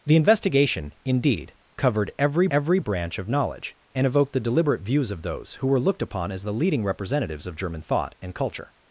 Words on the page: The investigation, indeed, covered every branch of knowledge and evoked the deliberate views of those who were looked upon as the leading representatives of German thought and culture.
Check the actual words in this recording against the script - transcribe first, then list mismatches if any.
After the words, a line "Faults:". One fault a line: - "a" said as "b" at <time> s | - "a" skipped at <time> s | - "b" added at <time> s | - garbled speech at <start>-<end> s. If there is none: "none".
The investigation, indeed, covered every every branch of knowledge and evoked the deliberate views of those who were looked upon as the leading representatives of German thought and culture.
Faults:
- "every" added at 2.5 s